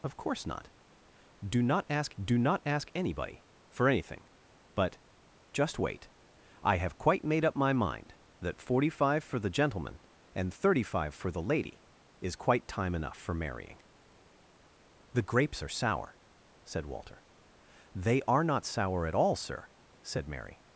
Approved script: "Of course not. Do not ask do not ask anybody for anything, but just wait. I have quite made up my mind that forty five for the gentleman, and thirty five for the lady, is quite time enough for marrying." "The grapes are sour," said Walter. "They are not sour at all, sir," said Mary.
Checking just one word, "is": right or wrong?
right